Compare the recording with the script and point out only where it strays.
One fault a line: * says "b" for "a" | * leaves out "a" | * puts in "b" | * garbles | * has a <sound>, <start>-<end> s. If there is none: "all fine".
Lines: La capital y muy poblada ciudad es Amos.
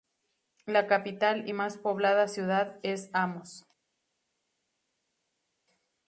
* says "más" for "muy"